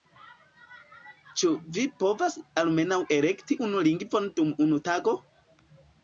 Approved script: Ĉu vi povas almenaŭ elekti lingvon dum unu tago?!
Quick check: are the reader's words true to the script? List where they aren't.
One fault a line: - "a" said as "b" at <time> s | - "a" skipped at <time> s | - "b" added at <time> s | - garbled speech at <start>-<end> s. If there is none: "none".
- "unu" added at 3.7 s